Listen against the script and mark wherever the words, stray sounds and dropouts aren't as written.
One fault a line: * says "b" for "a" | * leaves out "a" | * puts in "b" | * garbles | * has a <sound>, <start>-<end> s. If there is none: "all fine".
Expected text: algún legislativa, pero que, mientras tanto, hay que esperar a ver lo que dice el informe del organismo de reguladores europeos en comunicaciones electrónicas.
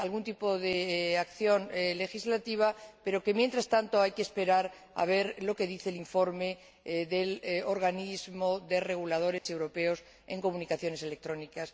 * puts in "tipo de acción"
* has a dropout, 9.4-9.5 s